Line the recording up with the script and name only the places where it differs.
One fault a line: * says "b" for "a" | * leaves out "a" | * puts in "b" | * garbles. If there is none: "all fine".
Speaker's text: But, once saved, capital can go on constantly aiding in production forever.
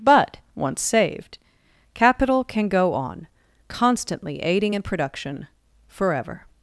all fine